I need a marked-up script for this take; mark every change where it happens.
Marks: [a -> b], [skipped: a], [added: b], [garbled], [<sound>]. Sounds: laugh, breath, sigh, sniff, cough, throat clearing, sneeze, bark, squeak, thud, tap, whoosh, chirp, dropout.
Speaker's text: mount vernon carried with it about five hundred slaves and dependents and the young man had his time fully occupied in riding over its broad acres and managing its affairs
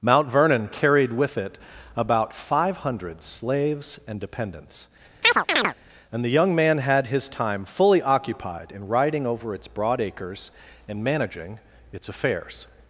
mount vernon carried with it about five hundred slaves and dependents [chirp] and the young man had his time fully occupied in riding over its broad acres and managing its affairs